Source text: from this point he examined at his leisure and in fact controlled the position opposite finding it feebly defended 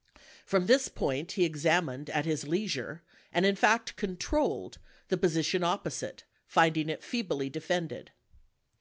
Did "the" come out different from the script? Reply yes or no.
no